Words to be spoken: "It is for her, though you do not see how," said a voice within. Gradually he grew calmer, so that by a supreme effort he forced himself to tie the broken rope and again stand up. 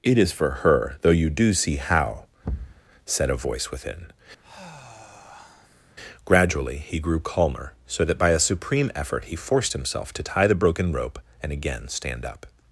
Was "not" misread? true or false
true